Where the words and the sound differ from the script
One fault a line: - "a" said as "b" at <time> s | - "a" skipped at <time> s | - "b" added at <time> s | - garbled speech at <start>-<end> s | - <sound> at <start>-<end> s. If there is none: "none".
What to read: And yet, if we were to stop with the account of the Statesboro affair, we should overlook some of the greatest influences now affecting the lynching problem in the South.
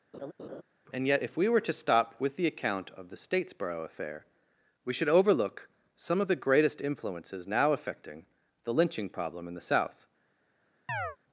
- laugh at 0.1-0.6 s
- chirp at 10.9-11.2 s